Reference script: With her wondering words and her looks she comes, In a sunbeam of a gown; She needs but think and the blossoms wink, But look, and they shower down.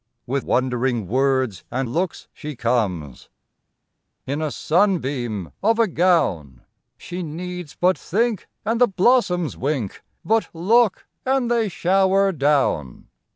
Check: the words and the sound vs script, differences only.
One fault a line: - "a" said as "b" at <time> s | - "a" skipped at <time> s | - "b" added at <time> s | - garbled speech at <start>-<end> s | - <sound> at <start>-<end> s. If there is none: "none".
- "her" skipped at 0.5 s
- "her" skipped at 1.9 s